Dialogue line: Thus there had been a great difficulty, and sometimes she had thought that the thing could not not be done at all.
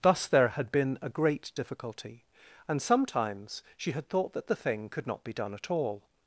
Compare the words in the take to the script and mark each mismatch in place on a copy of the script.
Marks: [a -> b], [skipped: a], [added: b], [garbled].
Thus there had been a great difficulty, and sometimes she had thought that the thing could not [skipped: not] be done at all.